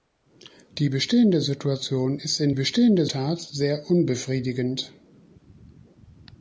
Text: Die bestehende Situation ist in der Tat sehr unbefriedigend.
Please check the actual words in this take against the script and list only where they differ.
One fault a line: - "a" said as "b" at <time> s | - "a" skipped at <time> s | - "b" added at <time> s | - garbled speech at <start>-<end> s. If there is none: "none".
- "der" said as "bestehende" at 2.5 s